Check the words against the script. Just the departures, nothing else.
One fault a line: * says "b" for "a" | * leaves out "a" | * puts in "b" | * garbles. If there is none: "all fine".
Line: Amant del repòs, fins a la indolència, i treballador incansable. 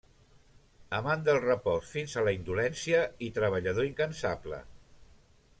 all fine